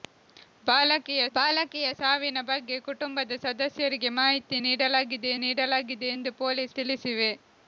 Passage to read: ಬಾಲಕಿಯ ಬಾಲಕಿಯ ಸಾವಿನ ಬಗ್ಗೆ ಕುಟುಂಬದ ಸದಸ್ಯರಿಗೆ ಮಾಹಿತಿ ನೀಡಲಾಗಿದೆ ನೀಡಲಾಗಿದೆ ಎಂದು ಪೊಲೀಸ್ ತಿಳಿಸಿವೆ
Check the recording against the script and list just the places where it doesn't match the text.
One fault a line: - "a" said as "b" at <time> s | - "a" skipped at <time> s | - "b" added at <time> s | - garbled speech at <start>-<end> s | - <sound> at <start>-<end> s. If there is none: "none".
none